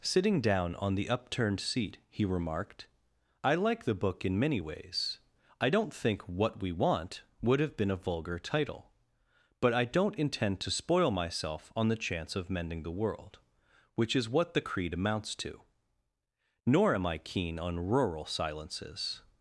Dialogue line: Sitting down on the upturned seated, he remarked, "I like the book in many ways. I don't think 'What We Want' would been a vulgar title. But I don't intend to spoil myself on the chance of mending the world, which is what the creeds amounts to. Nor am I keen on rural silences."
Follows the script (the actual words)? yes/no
no